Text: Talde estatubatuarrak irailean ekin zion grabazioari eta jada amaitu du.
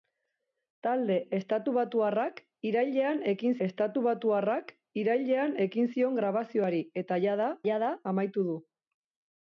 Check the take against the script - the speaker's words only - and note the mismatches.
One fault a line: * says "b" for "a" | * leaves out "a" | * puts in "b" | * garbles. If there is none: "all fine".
* puts in "estatubatuarrak irailean ekin"
* puts in "jada"